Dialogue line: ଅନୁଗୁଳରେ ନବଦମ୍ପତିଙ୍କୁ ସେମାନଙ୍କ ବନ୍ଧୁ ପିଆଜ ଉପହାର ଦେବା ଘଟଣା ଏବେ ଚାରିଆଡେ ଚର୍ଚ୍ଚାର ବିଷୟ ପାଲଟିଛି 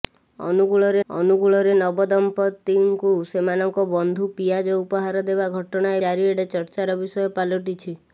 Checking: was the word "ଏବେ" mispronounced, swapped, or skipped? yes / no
yes